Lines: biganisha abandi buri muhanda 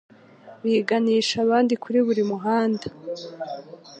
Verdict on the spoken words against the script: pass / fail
fail